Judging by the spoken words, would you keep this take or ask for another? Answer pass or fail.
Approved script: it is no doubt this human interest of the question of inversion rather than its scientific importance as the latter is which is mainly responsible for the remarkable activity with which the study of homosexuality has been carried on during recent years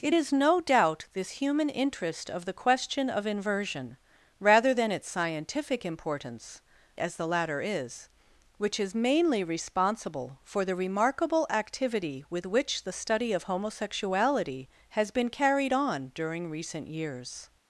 pass